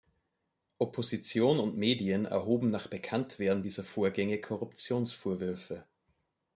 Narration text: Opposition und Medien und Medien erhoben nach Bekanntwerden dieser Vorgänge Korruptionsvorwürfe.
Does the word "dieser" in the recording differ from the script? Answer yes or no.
no